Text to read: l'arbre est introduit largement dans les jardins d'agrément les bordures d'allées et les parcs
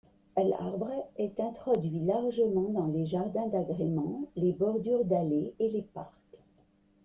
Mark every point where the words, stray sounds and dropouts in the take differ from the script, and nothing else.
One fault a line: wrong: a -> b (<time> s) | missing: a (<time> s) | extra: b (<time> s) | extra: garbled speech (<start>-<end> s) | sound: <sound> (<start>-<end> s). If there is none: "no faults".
no faults